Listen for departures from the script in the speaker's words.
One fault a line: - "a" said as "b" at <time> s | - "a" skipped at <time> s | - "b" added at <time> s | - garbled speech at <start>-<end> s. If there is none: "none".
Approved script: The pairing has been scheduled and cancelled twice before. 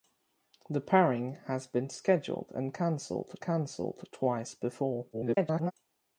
- "cancelled" added at 3.4 s
- garbled speech at 5.1-5.7 s